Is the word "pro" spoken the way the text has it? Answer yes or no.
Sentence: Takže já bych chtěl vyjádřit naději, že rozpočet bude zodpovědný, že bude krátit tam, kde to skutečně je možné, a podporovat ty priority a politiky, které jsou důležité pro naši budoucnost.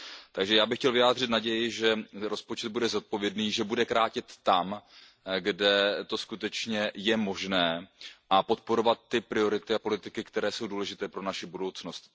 yes